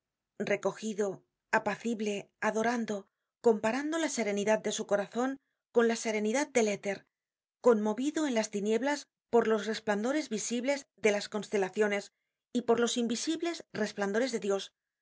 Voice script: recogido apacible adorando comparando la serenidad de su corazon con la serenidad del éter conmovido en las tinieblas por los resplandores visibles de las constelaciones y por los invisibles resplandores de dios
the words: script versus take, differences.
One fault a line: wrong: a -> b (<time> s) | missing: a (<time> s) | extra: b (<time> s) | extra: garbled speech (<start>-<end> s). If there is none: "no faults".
no faults